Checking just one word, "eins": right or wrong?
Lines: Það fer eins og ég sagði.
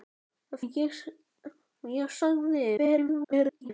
wrong